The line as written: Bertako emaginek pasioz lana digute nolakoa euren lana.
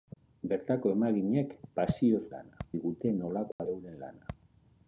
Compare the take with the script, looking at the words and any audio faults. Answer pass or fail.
fail